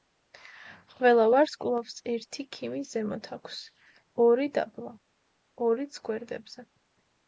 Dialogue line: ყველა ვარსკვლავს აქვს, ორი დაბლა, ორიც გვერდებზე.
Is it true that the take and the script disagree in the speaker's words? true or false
true